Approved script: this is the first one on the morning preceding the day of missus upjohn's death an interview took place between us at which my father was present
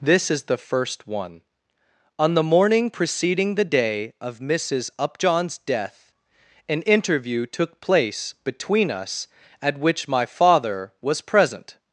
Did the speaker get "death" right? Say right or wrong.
right